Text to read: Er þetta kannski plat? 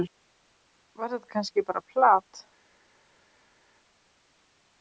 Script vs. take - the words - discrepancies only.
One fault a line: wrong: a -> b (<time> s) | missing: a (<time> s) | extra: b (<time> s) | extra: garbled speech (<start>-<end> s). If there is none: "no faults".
wrong: Er -> Var (1.0 s)
extra: bara (1.7 s)